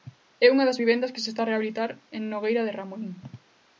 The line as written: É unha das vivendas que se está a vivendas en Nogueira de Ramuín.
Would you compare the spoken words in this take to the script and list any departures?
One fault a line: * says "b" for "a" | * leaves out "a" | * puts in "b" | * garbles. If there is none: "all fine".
* says "rehabilitar" for "vivendas"